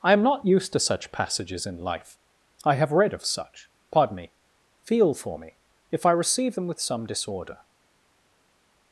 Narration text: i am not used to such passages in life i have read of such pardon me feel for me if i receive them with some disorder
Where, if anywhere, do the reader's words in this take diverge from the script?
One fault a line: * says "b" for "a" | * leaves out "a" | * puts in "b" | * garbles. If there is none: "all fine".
all fine